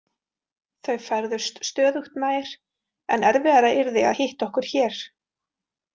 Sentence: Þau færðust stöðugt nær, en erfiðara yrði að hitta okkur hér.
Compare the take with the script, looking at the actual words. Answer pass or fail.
pass